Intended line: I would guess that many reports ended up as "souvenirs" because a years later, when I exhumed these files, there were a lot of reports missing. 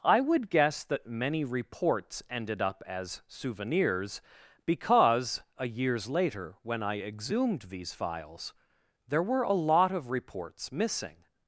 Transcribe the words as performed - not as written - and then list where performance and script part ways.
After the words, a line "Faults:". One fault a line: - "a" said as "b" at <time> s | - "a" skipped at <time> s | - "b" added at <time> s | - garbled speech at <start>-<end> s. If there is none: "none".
I would guess that many reports ended up as "souvenirs" because a years later, when I exhumed these files, there were a lot of reports missing.
Faults:
none